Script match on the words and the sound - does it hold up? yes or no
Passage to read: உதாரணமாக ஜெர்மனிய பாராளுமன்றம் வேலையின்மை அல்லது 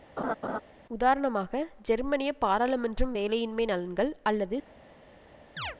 no